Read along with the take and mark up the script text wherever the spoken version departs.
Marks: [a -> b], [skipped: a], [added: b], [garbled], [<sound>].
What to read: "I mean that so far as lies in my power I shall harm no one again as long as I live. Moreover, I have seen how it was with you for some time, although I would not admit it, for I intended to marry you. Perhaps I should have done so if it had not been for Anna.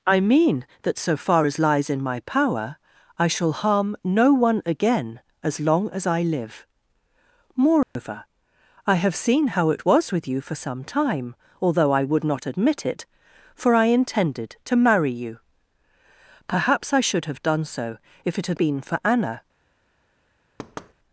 "I mean that so far as lies in my power I shall harm no one again as long as I live. Moreover, [dropout] I have seen how it was with you for some time, although I would not admit it, for I intended to marry you. Perhaps I should have done so if it had [skipped: not] been for Anna. [thud]